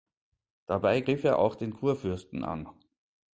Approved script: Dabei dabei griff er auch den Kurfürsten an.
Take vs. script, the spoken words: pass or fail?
fail